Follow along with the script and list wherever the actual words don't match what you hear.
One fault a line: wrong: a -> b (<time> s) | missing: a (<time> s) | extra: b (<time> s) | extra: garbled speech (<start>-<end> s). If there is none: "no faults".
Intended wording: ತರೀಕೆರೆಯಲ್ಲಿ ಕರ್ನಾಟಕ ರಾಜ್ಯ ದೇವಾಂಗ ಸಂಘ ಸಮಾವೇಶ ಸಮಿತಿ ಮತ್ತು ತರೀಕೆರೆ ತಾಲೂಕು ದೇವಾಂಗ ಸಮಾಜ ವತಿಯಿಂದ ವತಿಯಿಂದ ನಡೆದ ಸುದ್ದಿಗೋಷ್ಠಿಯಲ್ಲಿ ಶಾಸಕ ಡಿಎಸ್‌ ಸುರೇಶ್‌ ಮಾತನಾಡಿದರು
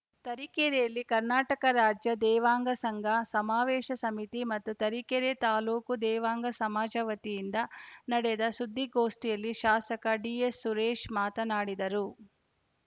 missing: ವತಿಯಿಂದ (7.6 s)